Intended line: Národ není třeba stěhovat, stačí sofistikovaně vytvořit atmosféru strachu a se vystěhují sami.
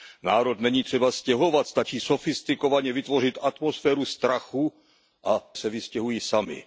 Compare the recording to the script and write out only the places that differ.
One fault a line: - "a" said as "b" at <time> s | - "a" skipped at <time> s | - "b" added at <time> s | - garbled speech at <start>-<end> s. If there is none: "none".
none